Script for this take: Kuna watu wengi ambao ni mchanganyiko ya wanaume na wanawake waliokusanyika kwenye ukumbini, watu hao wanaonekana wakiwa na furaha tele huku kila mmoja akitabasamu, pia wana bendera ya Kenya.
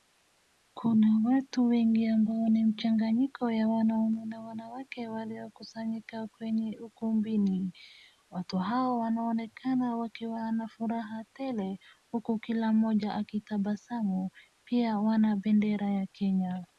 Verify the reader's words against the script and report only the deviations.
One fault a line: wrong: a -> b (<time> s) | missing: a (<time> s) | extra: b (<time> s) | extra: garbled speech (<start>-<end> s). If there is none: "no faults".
no faults